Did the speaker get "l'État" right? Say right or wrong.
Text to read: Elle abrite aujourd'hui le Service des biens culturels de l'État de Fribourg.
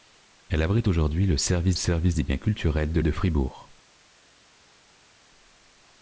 wrong